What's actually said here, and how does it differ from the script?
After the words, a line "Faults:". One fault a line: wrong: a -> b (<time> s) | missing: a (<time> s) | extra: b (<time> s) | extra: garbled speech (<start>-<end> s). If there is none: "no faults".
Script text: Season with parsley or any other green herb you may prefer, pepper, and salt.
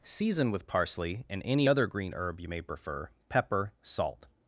Season with parsley and any other green herb you may prefer, pepper, salt.
Faults:
wrong: or -> and (1.3 s)
missing: and (3.7 s)